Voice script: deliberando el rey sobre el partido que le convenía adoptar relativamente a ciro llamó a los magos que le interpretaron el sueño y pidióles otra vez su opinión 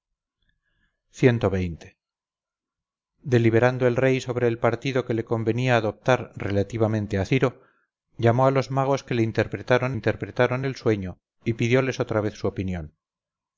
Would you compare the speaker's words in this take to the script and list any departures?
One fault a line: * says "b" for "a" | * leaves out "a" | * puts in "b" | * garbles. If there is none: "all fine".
* puts in "interpretaron"